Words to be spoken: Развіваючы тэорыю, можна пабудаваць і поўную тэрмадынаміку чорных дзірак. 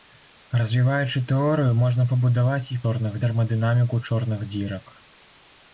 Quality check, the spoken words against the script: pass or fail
fail